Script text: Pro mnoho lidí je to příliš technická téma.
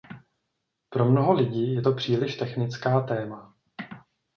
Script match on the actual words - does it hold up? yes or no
yes